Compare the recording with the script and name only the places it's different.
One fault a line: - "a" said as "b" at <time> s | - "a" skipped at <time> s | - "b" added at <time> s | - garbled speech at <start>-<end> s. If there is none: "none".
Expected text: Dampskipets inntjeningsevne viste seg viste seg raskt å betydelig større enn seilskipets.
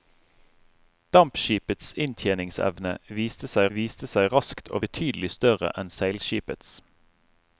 none